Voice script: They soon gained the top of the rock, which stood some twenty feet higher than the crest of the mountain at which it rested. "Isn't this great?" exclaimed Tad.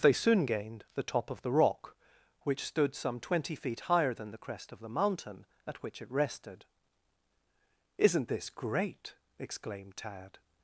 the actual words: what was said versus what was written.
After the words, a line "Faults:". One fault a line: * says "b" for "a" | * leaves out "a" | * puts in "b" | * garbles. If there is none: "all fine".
They soon gained the top of the rock, which stood some twenty feet higher than the crest of the mountain at which it rested. "Isn't this great?" exclaimed Tad.
Faults:
all fine